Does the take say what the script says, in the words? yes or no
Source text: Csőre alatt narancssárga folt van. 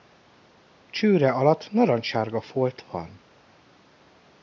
yes